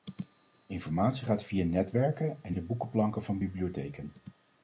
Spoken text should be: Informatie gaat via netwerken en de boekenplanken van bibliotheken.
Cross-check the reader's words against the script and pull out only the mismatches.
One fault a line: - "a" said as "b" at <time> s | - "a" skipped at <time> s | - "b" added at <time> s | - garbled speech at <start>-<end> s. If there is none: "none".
none